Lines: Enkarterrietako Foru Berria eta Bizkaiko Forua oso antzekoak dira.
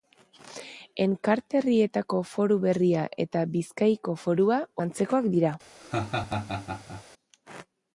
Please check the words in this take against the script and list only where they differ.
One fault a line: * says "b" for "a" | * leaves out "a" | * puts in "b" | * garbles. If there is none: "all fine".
* leaves out "oso"